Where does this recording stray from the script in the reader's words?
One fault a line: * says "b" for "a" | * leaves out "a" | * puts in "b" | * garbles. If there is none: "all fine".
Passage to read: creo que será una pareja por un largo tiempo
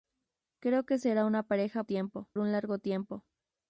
* says "tiempo" for "por"